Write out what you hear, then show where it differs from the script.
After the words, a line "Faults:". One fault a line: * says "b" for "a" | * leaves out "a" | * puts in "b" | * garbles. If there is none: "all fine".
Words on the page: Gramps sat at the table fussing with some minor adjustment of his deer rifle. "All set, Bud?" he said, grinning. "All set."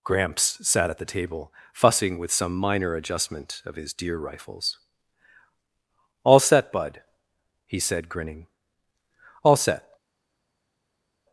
Gramps sat at the table fussing with some minor adjustment of his deer rifles. "All set, Bud?" he said, grinning. "All set."
Faults:
* says "rifles" for "rifle"